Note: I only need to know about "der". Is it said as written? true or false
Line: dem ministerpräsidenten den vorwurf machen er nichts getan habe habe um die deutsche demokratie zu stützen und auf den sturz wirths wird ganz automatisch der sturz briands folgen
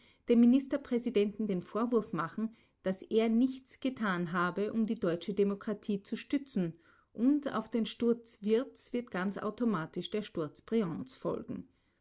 true